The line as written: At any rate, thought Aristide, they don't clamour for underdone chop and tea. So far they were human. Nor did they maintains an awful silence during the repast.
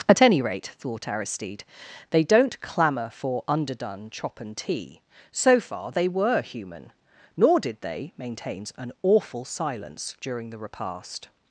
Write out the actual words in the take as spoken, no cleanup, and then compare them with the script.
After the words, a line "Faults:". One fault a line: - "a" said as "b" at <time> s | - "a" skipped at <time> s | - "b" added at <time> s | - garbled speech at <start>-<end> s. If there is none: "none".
At any rate, thought Aristide, they don't clamour for underdone chop and tea. So far they were human. Nor did they maintains an awful silence during the repast.
Faults:
none